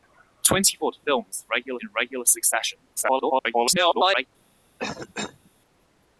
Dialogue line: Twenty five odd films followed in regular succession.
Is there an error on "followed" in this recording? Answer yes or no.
yes